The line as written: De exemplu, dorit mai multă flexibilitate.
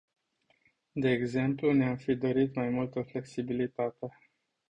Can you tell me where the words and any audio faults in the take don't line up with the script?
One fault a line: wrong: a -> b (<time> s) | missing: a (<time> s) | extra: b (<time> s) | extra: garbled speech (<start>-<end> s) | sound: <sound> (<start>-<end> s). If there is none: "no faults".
extra: ne am fi (1.7 s)